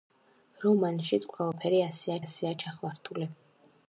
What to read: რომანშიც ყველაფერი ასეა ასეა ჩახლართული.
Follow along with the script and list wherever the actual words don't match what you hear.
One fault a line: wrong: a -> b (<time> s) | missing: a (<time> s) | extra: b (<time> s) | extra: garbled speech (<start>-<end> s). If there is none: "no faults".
no faults